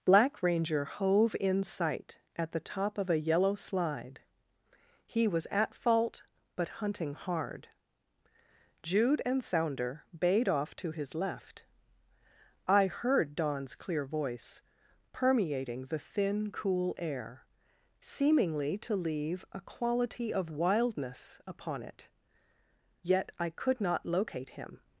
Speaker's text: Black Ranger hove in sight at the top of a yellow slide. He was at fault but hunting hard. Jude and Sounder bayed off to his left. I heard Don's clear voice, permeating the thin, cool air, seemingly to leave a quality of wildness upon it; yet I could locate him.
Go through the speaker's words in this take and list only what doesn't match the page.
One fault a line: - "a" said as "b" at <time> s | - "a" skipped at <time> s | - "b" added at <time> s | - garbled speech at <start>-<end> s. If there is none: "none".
- "not" added at 23.8 s